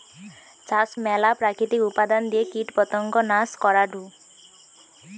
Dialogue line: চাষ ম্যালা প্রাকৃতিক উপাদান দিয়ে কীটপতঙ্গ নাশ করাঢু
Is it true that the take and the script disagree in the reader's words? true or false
false